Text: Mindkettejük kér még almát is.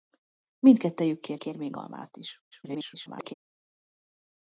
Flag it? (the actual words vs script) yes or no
yes